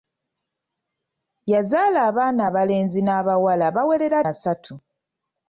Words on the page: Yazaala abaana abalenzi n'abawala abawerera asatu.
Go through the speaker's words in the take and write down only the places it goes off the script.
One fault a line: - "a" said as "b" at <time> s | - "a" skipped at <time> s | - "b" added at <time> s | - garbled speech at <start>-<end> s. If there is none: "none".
none